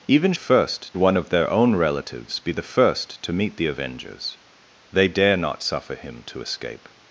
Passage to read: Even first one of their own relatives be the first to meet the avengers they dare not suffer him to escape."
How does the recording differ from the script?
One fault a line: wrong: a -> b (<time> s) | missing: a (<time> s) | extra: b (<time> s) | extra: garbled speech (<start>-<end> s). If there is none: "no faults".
no faults